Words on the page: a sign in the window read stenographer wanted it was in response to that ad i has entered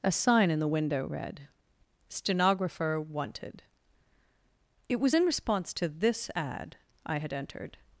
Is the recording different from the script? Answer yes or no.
yes